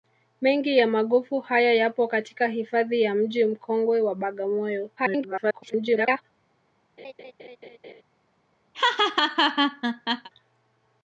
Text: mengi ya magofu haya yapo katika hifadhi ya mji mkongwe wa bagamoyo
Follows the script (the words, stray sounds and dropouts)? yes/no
no